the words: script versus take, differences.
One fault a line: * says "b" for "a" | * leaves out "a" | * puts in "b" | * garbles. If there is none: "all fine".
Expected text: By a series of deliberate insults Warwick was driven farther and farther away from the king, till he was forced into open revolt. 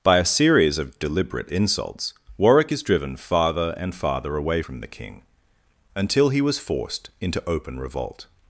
* says "is" for "was"
* says "until" for "till"